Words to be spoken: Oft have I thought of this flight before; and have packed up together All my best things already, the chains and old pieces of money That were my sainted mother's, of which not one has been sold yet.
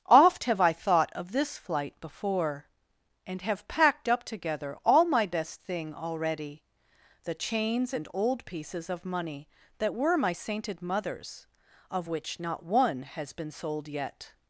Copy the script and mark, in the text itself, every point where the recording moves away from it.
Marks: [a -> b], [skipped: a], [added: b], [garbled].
Oft have I thought of this flight before; and have packed up together All my best [things -> thing] already, the chains and old pieces of money That were my sainted mother's, of which not one has been sold yet.